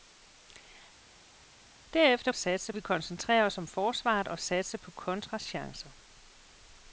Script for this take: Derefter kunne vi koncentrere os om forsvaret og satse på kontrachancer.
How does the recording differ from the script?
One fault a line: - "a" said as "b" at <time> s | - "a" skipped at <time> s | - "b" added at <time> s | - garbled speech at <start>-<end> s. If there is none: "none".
- "kunne" said as "satse" at 2.3 s